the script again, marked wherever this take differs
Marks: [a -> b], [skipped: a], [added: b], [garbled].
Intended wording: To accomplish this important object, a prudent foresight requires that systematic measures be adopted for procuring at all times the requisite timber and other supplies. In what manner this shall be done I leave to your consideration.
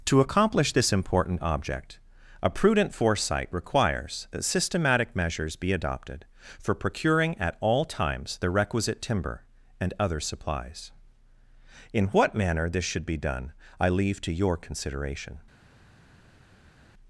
To accomplish this important object, a prudent foresight requires that systematic measures be adopted for procuring at all times the requisite timber and other supplies. In what manner this [shall -> should] be done I leave to your consideration.